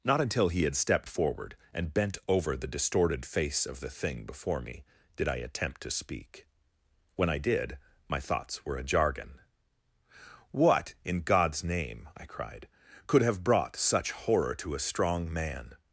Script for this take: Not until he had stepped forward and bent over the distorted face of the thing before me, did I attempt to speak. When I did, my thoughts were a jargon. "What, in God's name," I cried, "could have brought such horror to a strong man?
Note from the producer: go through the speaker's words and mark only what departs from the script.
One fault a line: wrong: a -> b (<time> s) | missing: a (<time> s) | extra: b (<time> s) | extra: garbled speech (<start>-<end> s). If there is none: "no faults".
no faults